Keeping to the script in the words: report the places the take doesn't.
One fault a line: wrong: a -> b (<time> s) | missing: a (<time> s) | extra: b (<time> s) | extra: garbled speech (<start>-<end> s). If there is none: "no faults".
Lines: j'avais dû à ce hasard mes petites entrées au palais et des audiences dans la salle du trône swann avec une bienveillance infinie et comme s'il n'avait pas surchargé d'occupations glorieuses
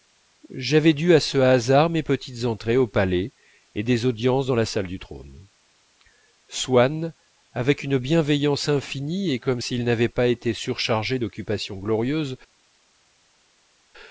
extra: été (10.3 s)